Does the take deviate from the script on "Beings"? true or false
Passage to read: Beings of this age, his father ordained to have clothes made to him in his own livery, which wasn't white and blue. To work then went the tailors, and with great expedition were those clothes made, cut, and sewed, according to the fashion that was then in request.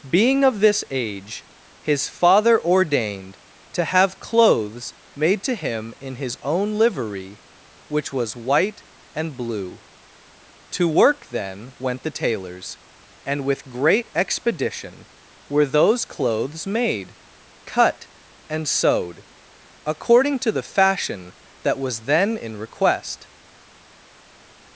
true